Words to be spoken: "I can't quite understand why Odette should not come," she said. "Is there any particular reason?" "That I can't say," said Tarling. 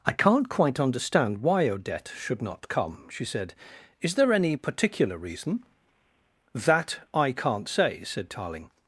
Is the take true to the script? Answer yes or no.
yes